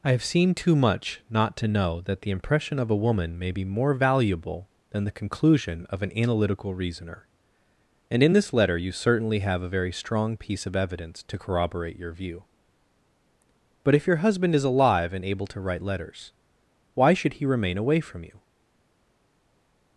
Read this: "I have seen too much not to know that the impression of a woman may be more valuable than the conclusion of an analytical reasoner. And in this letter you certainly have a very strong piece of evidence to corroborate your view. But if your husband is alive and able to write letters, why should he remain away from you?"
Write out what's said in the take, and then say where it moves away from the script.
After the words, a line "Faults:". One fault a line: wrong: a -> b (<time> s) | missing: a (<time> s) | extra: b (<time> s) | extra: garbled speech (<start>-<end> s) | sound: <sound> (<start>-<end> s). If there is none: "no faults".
"I have seen too much not to know that the impression of a woman may be more valuable than the conclusion of an analytical reasoner. And in this letter you certainly have a very strong piece of evidence to corroborate your view. But if your husband is alive and able to write letters, why should he remain away from you?"
Faults:
no faults